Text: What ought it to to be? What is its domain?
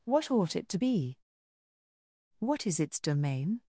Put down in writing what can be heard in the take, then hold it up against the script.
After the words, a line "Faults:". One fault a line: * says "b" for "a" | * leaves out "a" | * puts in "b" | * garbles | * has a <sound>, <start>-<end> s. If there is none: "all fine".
What ought it to be? What is its domain?
Faults:
* leaves out "to"